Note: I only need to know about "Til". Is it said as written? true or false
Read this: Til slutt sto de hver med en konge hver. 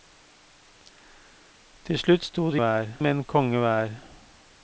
true